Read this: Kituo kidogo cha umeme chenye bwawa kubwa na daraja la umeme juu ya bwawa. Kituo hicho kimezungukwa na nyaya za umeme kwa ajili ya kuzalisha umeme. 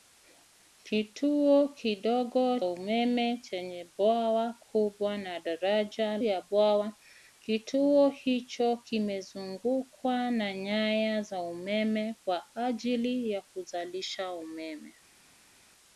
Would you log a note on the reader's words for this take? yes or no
yes